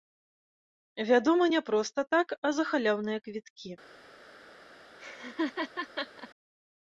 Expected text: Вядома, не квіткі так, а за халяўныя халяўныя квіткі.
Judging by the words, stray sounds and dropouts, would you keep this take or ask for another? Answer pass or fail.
fail